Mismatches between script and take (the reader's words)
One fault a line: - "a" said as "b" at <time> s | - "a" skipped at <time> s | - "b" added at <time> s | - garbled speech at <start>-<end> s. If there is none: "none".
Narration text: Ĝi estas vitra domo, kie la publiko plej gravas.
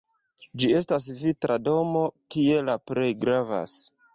- "publiko" skipped at 2.8 s